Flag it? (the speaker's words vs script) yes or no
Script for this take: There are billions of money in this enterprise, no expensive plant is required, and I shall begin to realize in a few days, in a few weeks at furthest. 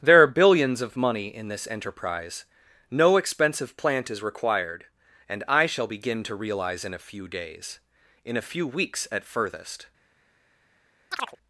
no